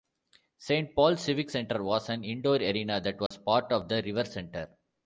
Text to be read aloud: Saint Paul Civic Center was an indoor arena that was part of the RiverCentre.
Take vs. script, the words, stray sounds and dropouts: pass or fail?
fail